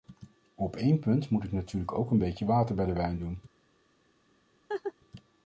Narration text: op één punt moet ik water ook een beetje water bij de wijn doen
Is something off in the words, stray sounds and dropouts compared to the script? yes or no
yes